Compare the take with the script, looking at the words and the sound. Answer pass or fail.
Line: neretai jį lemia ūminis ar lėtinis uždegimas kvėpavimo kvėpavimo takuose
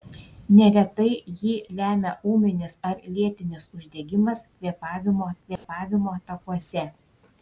fail